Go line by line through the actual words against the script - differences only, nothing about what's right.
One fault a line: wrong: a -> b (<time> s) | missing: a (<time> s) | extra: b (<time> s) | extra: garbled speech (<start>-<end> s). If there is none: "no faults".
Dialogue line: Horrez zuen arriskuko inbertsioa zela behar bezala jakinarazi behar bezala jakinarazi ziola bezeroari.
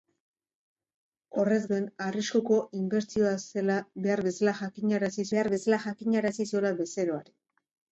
no faults